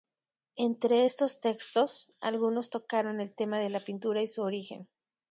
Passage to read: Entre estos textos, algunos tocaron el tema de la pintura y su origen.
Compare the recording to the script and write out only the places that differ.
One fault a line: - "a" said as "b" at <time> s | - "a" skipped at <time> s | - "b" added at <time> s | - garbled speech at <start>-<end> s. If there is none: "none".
none